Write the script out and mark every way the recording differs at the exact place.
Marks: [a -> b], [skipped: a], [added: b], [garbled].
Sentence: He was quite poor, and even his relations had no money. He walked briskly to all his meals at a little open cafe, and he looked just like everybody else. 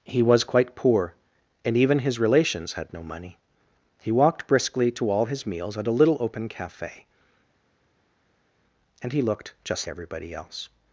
He was quite poor, and even his relations had no money. He walked briskly to all his meals at a little open cafe, and he looked just [skipped: like] everybody else.